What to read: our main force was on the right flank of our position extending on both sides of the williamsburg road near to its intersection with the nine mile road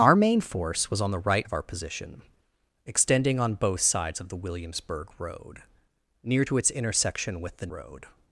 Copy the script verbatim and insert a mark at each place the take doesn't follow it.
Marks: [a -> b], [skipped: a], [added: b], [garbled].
our main force was on the right [skipped: flank] of our position extending on both sides of the williamsburg road near to its intersection with the [skipped: nine mile] road